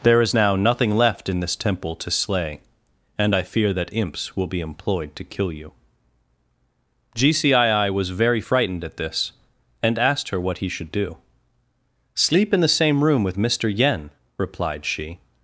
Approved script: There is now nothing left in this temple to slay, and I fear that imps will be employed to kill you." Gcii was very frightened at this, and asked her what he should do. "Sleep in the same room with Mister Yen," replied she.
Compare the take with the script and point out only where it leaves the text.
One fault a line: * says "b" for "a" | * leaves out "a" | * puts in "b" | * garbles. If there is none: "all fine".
all fine